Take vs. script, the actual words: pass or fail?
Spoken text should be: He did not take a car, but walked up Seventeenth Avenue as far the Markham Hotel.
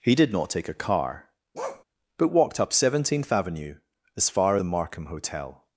pass